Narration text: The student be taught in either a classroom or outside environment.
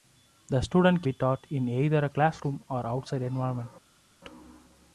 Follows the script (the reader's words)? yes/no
yes